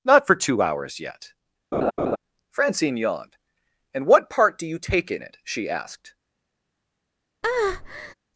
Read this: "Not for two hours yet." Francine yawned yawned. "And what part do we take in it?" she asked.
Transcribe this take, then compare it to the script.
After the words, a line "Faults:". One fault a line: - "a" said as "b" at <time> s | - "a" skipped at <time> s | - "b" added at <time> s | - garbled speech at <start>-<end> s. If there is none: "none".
"Not for two hours yet." Francine yawned. "And what part do you take in it?" she asked.
Faults:
- "yawned" skipped at 3.4 s
- "we" said as "you" at 4.7 s